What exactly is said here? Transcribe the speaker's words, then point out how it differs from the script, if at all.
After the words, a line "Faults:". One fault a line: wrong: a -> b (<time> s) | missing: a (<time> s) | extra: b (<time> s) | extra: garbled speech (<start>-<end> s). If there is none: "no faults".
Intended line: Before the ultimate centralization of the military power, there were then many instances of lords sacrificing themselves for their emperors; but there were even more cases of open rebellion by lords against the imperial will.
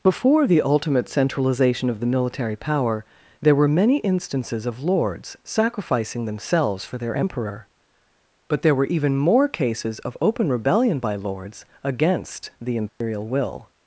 Before the ultimate centralization of the military power, there were many instances of lords sacrificing themselves for their emperor; but there were even more cases of open rebellion by lords against the imperial will.
Faults:
missing: then (3.7 s)
wrong: emperors -> emperor (7.2 s)